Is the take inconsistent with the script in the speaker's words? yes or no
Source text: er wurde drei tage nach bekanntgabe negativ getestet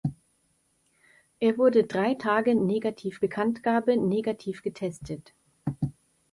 yes